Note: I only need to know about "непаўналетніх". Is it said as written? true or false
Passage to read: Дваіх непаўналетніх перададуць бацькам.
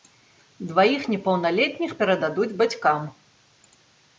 true